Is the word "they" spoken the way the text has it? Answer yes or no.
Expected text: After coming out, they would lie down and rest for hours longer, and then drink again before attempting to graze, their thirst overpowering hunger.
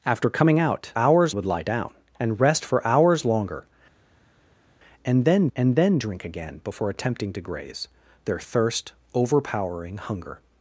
no